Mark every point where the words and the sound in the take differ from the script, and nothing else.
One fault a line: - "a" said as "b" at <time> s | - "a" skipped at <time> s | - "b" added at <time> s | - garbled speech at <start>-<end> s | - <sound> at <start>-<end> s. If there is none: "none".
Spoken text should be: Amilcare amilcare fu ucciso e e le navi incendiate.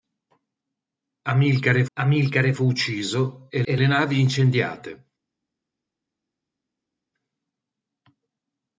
none